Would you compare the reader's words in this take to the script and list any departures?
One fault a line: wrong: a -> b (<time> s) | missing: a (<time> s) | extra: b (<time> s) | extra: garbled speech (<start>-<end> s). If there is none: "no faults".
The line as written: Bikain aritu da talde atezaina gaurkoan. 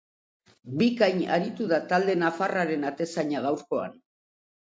extra: nafarraren (2.2 s)